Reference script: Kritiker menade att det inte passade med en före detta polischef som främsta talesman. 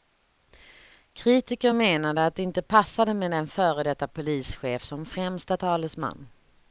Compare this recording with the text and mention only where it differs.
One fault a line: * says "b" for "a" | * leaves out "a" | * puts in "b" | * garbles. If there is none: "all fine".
all fine